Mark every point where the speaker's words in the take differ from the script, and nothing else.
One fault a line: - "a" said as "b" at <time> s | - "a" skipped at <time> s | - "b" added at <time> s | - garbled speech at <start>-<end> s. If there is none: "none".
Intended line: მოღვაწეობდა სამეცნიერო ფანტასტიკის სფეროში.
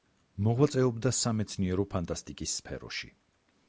none